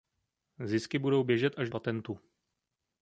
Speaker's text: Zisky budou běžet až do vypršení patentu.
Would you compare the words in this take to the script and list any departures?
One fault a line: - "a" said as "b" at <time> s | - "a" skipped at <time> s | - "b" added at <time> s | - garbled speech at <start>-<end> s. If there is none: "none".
- "do vypršení" skipped at 1.7 s